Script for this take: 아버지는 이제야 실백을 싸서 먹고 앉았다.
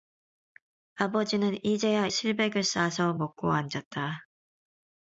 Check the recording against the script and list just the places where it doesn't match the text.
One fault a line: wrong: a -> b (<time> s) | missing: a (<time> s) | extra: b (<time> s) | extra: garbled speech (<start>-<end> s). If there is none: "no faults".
no faults